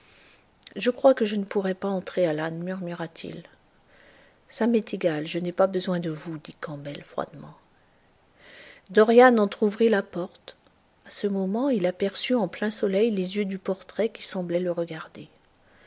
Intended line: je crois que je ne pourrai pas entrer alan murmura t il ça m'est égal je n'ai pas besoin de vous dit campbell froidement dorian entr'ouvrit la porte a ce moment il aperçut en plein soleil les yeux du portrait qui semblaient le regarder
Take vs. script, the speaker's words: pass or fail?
pass